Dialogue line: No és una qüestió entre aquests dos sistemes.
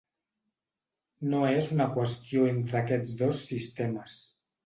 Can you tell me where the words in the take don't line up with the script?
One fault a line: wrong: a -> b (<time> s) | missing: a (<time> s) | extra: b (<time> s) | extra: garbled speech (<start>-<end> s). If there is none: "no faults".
no faults